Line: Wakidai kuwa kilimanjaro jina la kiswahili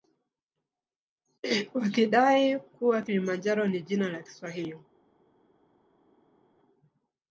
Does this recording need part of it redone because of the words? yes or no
yes